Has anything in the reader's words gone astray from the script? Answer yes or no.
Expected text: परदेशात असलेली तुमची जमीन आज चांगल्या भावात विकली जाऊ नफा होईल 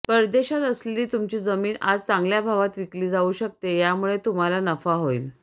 yes